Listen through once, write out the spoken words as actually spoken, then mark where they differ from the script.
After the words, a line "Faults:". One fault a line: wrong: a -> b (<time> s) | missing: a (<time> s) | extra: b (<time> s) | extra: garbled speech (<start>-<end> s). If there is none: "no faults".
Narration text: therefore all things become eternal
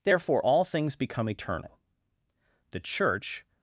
therefore all things become eternal the church
Faults:
extra: the church (2.7 s)